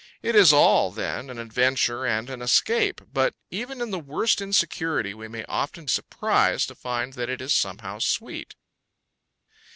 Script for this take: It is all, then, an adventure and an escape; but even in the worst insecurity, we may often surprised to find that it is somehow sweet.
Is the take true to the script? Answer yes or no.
yes